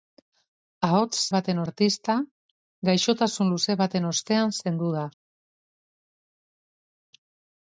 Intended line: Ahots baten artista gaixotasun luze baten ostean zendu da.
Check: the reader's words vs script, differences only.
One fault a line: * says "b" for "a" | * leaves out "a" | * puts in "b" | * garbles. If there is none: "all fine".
all fine